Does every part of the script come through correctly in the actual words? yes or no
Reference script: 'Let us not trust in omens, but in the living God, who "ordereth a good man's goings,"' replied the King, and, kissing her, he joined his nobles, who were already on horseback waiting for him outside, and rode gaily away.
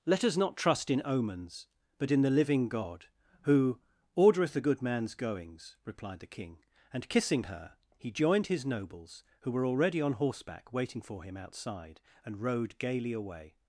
yes